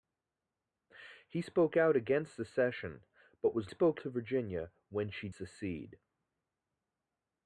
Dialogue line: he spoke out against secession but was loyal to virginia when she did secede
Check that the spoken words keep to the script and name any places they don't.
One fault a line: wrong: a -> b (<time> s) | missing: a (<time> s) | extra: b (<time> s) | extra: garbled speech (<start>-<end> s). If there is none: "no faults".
wrong: loyal -> spoke (3.7 s)
missing: did (5.3 s)